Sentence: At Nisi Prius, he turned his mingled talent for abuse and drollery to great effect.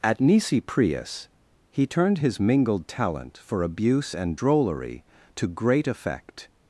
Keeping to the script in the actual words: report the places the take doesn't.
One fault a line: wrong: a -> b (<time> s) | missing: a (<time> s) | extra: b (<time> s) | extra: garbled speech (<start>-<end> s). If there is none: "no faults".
no faults